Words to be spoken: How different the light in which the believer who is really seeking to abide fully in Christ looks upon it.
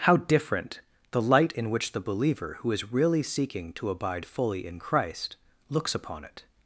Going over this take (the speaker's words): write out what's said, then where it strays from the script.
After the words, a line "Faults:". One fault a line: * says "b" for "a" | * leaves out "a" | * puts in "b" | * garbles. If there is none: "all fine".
How different the light in which the believer who is really seeking to abide fully in Christ looks upon it.
Faults:
all fine